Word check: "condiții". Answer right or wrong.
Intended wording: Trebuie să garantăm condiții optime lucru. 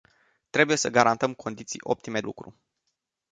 right